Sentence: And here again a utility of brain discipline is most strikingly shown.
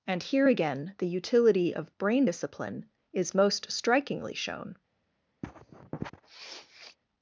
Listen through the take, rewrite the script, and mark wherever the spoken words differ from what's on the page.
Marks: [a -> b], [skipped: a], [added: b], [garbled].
And here again [a -> the] utility of brain discipline is most strikingly shown.